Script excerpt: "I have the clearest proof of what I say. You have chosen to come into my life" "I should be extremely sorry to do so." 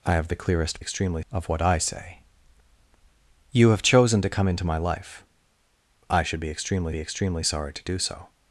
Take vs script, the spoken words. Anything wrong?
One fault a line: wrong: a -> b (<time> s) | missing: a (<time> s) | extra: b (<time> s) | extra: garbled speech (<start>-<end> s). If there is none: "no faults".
wrong: proof -> extremely (0.8 s)
extra: be extremely (6.9 s)